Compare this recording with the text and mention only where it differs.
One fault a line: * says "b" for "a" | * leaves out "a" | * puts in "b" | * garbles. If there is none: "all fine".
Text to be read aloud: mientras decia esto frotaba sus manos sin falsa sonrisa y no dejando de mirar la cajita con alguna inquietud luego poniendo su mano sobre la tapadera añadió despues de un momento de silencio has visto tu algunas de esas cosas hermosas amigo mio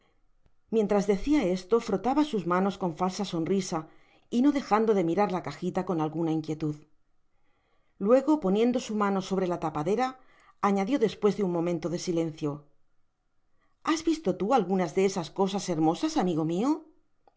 * says "con" for "sin"